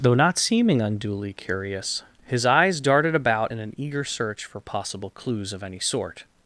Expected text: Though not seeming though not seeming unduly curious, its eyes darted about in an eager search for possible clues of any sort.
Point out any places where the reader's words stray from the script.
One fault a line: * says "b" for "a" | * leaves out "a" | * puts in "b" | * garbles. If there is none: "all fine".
* leaves out "though not seeming"
* says "his" for "its"